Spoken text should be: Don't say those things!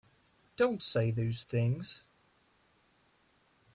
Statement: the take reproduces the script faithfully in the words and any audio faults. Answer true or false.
true